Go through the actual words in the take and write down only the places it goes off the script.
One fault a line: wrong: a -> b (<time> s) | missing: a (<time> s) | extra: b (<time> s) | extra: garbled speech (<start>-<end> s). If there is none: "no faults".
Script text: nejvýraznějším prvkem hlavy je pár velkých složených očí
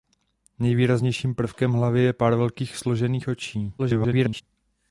extra: garbled speech (3.8-4.4 s)